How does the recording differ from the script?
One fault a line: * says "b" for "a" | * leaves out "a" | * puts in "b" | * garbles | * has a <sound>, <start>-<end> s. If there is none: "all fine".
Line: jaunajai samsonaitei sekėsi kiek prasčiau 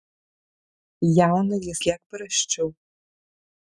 * leaves out "samsonaitei sekėsi"